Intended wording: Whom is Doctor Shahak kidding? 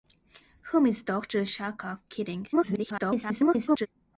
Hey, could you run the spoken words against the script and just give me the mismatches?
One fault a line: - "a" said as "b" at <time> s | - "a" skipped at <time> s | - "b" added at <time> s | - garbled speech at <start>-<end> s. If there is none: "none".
- garbled speech at 2.5-3.9 s